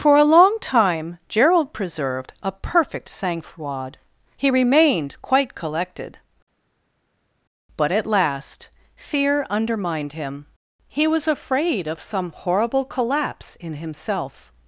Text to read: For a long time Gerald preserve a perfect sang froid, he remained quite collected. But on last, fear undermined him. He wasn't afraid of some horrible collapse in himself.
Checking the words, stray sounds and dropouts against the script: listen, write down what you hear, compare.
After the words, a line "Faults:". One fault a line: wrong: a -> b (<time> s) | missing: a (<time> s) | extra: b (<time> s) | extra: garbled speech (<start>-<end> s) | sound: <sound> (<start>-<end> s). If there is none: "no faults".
For a long time Gerald preserved a perfect sang froid, he remained quite collected. But at last, fear undermined him. He was afraid of some horrible collapse in himself.
Faults:
wrong: preserve -> preserved (1.7 s)
wrong: on -> at (7.9 s)
wrong: wasn't -> was (11.1 s)